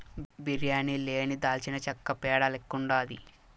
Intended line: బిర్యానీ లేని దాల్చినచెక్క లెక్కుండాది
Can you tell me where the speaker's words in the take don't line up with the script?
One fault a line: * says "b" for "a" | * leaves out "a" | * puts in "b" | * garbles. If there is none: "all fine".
* puts in "పేడ"